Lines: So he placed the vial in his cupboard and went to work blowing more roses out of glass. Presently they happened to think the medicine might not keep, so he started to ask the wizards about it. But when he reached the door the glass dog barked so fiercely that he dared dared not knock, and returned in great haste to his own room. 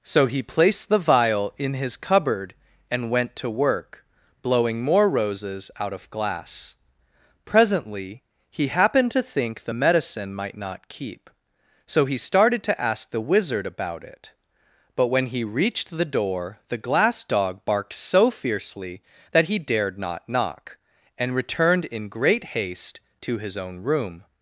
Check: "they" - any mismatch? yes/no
yes